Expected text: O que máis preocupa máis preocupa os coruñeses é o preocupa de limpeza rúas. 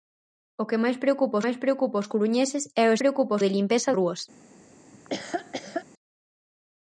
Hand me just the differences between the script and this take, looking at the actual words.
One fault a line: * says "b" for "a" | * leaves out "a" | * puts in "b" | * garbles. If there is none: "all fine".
all fine